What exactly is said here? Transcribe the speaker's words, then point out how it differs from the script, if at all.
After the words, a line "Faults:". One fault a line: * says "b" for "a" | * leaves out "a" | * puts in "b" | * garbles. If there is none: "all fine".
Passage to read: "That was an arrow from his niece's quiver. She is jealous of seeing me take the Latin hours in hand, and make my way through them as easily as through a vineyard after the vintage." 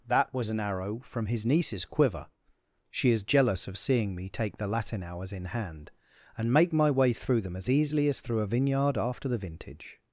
"That was an arrow from his niece's quiver. She is jealous of seeing me take the Latin hours in hand, and make my way through them as easily as through a vineyard after the vintage."
Faults:
all fine